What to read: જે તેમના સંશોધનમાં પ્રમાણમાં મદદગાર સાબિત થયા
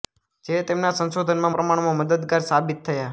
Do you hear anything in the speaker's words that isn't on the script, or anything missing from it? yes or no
no